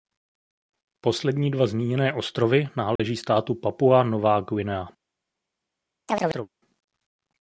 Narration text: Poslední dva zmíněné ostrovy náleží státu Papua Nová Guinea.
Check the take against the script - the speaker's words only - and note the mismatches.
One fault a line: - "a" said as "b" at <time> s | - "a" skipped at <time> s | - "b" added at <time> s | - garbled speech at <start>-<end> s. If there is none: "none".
none